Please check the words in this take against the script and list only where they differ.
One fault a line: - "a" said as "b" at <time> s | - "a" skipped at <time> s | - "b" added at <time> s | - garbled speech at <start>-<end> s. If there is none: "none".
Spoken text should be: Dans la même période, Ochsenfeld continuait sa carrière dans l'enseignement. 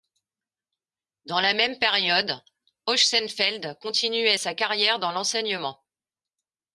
none